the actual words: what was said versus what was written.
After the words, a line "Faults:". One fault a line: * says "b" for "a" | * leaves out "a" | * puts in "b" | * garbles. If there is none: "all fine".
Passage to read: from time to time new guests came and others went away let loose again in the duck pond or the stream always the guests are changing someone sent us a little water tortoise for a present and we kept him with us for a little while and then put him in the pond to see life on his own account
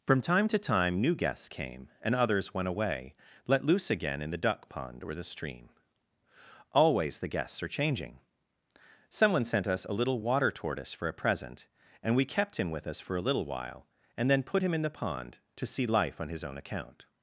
from time to time new guests came and others went away let loose again in the duck pond or the stream always the guests are changing someone sent us a little water tortoise for a present and we kept him with us for a little while and then put him in the pond to see life on his own account
Faults:
all fine